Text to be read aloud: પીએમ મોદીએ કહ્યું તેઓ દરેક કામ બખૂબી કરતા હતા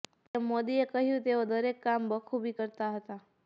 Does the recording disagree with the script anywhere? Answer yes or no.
no